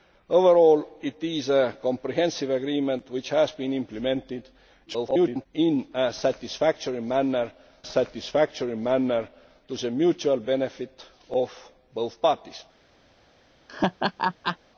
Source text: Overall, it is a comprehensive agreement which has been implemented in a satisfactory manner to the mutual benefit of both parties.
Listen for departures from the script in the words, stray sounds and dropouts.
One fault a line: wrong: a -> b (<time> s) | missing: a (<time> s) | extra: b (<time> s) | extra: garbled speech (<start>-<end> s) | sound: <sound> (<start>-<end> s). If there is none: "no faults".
extra: garbled speech (4.9-5.5 s)
extra: satisfactory manner (7.8 s)
sound: laugh (13.7-14.6 s)